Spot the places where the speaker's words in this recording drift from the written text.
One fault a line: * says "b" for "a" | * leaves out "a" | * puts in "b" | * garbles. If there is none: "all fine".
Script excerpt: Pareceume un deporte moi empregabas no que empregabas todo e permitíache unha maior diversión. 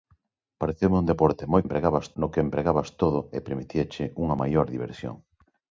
all fine